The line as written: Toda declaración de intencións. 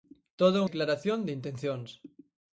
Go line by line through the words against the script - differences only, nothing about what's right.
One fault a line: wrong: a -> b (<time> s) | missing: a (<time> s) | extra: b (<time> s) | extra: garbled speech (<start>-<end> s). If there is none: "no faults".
no faults